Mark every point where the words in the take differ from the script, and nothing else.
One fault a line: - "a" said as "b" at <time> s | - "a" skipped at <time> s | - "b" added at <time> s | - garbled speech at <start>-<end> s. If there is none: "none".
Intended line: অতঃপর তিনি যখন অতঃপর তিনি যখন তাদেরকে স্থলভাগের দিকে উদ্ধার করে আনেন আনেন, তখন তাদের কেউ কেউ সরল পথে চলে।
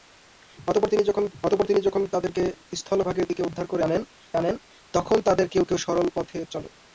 none